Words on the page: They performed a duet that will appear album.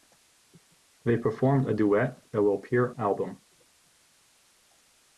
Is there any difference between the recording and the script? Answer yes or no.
no